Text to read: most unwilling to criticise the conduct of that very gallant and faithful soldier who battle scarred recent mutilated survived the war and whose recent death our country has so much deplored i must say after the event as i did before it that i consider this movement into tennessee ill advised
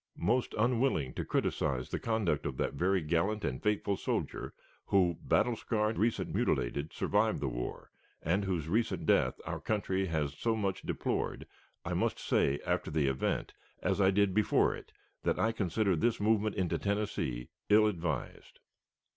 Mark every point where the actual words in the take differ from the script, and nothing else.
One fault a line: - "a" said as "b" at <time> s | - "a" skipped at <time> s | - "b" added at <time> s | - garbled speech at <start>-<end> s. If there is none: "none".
none